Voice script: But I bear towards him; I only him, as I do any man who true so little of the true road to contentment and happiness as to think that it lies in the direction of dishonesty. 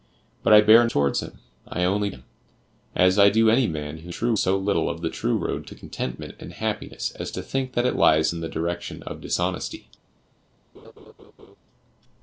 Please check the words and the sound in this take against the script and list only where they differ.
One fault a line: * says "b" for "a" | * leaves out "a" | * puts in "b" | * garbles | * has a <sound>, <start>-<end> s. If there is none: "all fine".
* has a laugh, 10.7-11.6 s